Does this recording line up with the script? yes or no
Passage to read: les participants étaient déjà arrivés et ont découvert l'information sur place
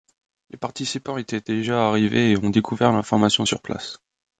yes